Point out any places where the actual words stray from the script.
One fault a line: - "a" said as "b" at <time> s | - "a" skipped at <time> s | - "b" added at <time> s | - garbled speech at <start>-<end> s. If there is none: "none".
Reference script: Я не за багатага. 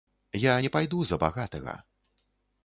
- "пайду" added at 0.7 s